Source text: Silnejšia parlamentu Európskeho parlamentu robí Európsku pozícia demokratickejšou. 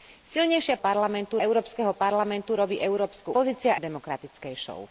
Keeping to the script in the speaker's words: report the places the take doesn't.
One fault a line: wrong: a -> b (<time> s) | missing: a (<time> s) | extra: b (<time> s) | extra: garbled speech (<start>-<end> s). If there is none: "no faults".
no faults